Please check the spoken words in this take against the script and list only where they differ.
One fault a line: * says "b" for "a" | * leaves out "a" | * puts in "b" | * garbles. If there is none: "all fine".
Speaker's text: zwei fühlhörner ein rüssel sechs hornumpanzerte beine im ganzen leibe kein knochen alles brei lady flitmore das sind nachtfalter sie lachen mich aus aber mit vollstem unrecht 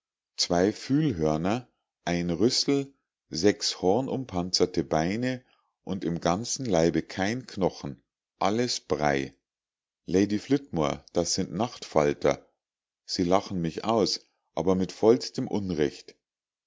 * puts in "und"